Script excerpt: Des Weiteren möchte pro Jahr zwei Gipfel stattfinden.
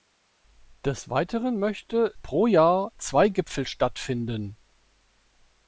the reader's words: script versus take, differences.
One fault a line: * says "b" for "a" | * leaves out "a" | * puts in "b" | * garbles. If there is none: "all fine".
all fine